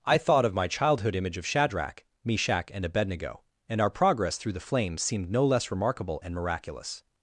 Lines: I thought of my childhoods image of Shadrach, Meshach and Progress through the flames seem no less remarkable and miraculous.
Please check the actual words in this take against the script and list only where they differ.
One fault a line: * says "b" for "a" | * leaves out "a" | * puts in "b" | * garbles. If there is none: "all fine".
* says "childhood" for "childhoods"
* puts in "Abednego and our"
* says "seemed" for "seem"